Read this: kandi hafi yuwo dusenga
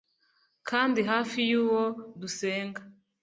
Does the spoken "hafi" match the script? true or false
true